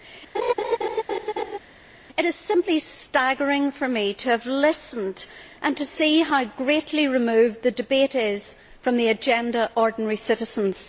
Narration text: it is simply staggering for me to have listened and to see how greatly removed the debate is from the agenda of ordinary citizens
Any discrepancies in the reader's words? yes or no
yes